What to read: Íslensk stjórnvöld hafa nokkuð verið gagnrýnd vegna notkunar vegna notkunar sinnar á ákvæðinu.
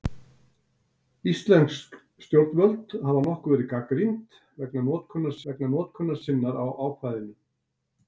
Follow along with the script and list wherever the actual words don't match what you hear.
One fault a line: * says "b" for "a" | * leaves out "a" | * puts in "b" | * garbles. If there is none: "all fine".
all fine